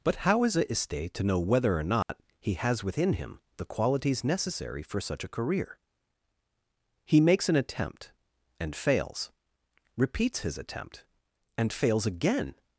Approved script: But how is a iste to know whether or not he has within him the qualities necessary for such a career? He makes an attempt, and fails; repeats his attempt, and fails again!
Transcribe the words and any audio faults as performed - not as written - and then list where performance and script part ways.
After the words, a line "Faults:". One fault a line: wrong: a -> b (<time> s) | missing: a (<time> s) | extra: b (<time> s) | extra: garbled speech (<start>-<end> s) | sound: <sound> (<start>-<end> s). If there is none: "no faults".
But how is a iste to know whether or not he has within him the qualities necessary for such a career? He makes an attempt, and fails; repeats his attempt, and fails again!
Faults:
sound: dropout (2.0-2.1 s)